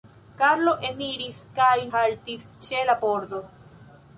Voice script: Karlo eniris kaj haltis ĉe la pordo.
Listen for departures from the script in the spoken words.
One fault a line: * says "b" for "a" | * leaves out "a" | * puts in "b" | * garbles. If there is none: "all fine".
all fine